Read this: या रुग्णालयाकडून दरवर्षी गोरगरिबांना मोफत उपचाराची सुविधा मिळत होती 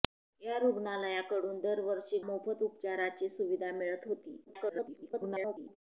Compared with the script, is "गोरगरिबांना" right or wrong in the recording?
wrong